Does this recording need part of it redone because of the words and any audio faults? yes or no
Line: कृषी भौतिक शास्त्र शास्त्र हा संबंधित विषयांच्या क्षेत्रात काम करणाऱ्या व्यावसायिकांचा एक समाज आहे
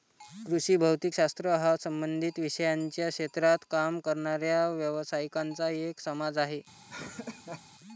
yes